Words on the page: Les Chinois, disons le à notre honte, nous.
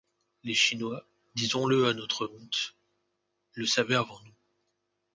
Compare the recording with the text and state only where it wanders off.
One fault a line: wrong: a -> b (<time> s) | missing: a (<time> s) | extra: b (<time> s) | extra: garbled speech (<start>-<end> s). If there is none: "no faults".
extra: le savaient avant (3.5 s)